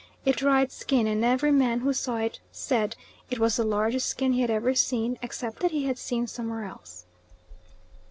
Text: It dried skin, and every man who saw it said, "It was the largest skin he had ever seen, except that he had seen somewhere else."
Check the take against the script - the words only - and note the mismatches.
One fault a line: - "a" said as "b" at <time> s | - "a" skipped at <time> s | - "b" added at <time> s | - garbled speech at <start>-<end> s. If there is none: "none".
none